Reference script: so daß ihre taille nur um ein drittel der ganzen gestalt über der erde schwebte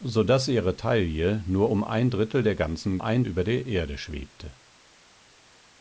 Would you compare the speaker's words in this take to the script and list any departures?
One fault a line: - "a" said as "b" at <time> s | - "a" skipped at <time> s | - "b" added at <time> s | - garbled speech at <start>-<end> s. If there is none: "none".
- "gestalt" said as "ein" at 3.0 s